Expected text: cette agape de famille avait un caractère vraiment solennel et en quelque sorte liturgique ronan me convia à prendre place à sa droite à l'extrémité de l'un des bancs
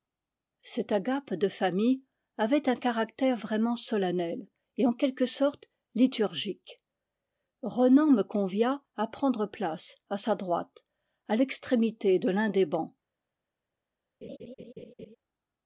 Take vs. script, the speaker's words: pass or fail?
pass